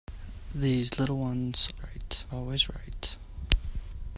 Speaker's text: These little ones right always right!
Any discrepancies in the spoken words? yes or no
no